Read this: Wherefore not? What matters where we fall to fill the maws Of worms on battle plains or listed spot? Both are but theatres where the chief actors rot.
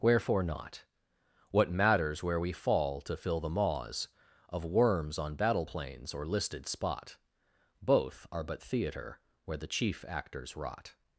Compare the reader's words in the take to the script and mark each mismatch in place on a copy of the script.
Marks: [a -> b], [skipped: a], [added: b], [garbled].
Wherefore not? What matters where we fall to fill the maws Of worms on battle plains or listed spot? Both are but [theatres -> theatre] where the chief actors rot.